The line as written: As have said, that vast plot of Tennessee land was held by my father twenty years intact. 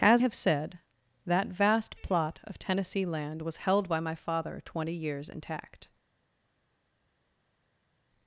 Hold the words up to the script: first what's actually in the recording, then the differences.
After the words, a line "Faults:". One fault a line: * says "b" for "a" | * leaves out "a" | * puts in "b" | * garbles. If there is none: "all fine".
As have said, that vast plot of Tennessee land was held by my father twenty years intact.
Faults:
all fine